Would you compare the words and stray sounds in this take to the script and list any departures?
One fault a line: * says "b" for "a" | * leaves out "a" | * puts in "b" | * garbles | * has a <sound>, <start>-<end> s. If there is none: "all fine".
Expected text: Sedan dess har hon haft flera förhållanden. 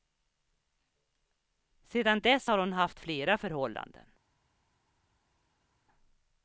all fine